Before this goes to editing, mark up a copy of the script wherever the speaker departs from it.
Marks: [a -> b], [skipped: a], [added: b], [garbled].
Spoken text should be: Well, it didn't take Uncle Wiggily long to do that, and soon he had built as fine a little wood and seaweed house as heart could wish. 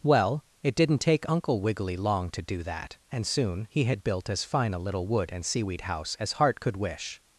Well, it didn't take Uncle Wiggily long to do that, and soon he had built as fine a little wood and seaweed house as heart could wish.